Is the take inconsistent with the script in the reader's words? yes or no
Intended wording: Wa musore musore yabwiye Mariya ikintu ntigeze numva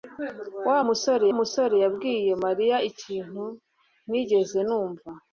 no